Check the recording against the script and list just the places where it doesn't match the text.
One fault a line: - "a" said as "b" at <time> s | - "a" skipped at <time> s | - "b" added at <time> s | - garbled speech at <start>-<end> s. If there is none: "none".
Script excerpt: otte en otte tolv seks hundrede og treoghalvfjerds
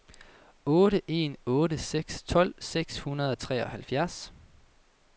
- "seks" added at 1.8 s